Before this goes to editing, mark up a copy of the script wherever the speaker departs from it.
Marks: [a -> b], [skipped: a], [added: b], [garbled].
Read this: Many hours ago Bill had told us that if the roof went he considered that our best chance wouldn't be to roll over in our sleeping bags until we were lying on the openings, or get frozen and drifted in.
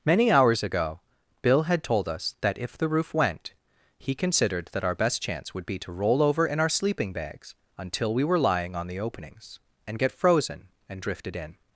Many hours ago Bill had told us that if the roof went he considered that our best chance [wouldn't -> would] be to roll over in our sleeping bags until we were lying on the openings, [or -> and] get frozen and drifted in.